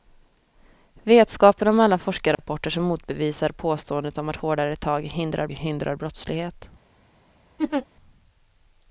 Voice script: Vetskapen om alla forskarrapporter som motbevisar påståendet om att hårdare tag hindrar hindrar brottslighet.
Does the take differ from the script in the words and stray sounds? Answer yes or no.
yes